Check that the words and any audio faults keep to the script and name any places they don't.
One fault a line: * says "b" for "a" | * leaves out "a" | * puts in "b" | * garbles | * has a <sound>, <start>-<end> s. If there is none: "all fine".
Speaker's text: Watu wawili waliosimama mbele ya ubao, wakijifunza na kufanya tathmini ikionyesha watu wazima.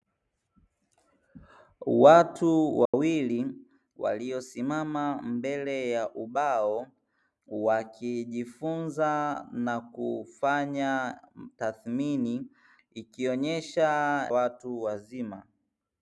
* has a dropout, 2.9-2.9 s